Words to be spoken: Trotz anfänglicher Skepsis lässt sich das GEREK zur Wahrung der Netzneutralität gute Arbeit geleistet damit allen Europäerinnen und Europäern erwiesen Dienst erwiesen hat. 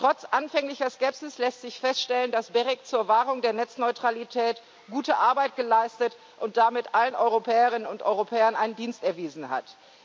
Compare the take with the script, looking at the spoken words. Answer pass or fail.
fail